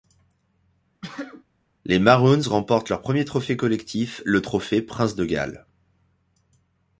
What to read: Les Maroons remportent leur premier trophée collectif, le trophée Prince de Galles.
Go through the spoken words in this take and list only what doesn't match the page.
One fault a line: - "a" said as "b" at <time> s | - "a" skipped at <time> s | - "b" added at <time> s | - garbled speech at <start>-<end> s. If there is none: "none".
none